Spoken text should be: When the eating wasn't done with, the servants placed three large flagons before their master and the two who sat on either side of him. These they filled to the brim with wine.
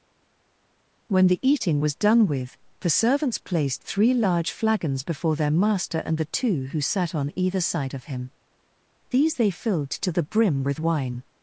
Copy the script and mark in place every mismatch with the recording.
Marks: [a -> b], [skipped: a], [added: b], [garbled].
When the eating [wasn't -> was] done with, the servants placed three large flagons before their master and the two who sat on either side of him. These they filled to the brim with wine.